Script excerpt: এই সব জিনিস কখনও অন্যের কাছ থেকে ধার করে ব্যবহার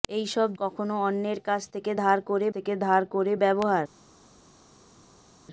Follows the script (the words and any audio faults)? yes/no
no